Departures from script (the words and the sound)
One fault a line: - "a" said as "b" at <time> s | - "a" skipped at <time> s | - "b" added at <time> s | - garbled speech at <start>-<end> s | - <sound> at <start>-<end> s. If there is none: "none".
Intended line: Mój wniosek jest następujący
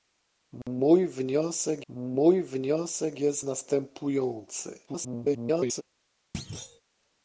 - dropout at 0.6-0.7 s
- "mój wniosek" added at 1.9 s
- garbled speech at 4.9-5.8 s
- thud at 6.3-6.8 s